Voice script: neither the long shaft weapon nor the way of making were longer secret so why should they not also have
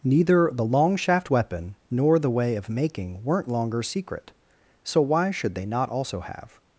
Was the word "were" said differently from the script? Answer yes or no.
yes